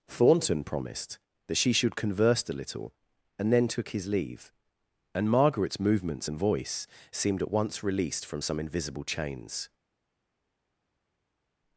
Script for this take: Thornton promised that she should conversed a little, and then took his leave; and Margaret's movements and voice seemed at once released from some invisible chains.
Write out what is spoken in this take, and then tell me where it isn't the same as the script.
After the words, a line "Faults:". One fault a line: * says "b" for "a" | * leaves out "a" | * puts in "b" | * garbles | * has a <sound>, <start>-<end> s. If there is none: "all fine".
Thornton promised that she should converse a little, and then took his leave; and Margaret's movements and voice seemed at once released from some invisible chains.
Faults:
* says "converse" for "conversed"